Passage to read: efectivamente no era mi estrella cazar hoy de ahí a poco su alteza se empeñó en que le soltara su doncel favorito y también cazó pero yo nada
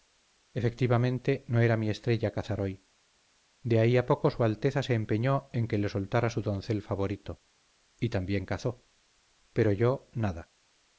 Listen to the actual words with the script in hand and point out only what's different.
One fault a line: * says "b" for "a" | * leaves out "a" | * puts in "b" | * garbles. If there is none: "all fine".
all fine